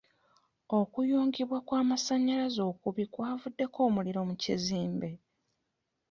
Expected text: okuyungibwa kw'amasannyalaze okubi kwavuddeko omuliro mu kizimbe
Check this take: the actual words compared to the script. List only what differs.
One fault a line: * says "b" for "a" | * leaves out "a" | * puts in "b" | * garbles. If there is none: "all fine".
all fine